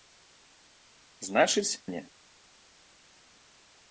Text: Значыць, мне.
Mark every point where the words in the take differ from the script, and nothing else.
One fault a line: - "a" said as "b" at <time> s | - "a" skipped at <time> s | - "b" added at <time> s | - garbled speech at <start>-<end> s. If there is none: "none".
none